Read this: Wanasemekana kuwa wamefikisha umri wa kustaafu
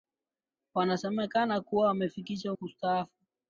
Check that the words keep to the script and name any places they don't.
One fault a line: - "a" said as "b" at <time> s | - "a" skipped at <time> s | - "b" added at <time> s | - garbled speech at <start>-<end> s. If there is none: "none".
- "umri wa" skipped at 2.5 s